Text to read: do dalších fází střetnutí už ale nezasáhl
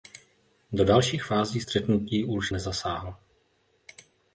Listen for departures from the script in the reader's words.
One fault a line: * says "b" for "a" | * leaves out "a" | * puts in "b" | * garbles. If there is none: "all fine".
* leaves out "ale"